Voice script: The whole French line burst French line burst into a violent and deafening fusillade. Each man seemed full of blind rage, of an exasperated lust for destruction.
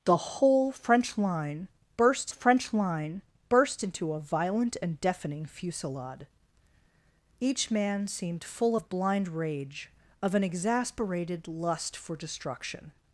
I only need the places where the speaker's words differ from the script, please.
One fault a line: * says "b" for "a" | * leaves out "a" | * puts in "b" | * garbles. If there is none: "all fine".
all fine